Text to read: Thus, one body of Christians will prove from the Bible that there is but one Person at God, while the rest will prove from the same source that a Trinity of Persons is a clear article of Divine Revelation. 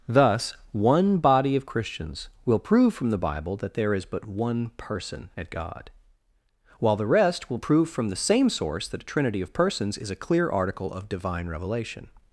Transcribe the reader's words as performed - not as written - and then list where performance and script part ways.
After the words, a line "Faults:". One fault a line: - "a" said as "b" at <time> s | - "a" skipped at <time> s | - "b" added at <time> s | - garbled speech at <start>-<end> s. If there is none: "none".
Thus, one body of Christians will prove from the Bible that there is but one Person at God, while the rest will prove from the same source that a Trinity of Persons is a clear article of Divine Revelation.
Faults:
none